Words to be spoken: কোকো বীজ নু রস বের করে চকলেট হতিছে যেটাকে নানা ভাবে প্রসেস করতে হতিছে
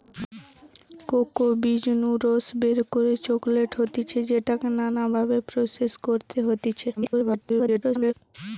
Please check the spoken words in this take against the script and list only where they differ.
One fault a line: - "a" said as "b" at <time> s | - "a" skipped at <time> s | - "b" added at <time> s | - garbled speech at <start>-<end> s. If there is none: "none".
- garbled speech at 7.0-8.1 s